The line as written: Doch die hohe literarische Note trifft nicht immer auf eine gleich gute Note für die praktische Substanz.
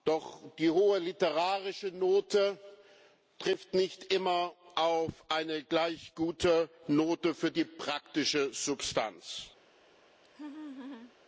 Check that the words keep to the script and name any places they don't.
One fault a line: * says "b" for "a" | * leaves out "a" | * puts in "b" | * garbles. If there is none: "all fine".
all fine